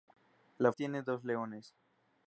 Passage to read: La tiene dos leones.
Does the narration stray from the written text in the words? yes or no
no